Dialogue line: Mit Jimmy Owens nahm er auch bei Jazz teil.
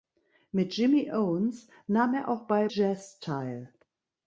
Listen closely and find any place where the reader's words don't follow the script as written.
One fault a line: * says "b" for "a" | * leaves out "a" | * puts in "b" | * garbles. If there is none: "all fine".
all fine